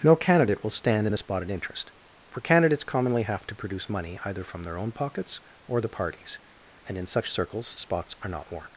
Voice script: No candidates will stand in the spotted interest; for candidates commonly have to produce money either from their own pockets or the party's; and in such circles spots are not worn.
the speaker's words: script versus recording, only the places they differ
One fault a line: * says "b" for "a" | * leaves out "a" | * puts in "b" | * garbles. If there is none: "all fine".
* says "candidate" for "candidates"